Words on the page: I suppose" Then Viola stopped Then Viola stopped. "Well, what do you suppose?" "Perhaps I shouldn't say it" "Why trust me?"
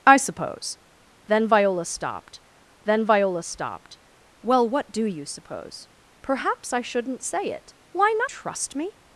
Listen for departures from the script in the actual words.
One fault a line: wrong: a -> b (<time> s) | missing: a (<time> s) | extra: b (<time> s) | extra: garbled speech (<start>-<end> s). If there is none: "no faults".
no faults